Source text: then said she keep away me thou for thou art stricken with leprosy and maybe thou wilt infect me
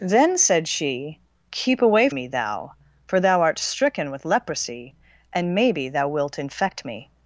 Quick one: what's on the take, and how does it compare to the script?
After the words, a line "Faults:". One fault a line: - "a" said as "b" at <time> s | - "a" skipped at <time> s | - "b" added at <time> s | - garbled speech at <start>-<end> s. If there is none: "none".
then said she keep away me thou for thou art stricken with leprosy and maybe thou wilt infect me
Faults:
none